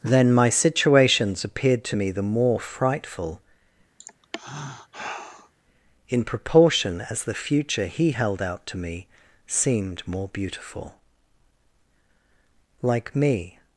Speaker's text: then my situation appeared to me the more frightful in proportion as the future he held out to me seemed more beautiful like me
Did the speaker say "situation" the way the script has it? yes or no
no